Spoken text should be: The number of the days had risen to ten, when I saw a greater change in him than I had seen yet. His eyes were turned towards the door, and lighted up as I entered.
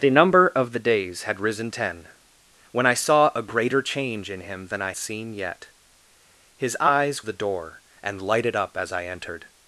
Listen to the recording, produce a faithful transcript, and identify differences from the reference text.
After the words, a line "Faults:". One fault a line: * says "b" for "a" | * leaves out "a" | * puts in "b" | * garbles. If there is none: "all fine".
The number of the days had risen ten, when I saw a greater change in him than I seen yet. His eyes the door, and lighted up as I entered.
Faults:
* leaves out "to"
* leaves out "had"
* leaves out "were turned towards"